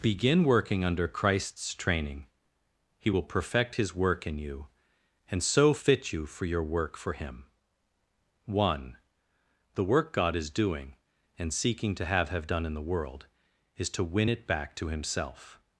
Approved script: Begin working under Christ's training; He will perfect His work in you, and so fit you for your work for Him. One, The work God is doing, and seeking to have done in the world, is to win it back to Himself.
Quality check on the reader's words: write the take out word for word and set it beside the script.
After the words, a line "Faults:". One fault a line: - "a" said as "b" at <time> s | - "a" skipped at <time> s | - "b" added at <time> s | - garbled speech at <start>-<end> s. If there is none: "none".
Begin working under Christ's training; He will perfect His work in you, and so fit you for your work for Him. One, The work God is doing, and seeking to have have done in the world, is to win it back to Himself.
Faults:
- "have" added at 12.3 s